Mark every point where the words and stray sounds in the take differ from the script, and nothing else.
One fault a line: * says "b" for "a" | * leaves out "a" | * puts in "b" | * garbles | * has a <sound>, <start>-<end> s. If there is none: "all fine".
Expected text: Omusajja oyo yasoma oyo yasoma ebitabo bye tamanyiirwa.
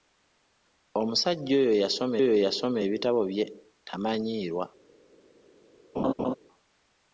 * has a laugh, 6.0-6.4 s